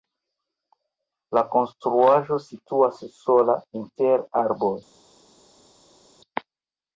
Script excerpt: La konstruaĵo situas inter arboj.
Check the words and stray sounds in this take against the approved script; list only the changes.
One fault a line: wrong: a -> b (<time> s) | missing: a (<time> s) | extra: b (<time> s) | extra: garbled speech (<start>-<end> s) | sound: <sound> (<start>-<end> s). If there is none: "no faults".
extra: sola (3.2 s)